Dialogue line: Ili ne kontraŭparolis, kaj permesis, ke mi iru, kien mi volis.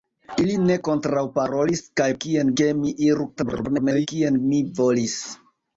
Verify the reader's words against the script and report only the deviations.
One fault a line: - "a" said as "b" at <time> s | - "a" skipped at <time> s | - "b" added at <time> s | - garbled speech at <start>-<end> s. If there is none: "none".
- "permesis" said as "kien" at 2.2 s
- garbled speech at 3.4-4.1 s